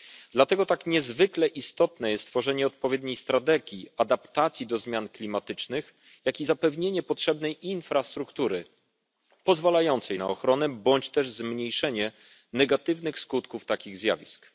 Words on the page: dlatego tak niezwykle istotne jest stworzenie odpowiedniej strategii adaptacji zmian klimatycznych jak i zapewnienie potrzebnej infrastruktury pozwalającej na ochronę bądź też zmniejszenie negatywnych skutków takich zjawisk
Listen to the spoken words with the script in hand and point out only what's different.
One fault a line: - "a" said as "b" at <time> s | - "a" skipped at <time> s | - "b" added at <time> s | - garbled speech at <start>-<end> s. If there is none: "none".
- "do" added at 4.7 s